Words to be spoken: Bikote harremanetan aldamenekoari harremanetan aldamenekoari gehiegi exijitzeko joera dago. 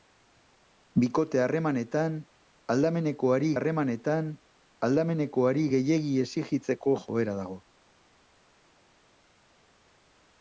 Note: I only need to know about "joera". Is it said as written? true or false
true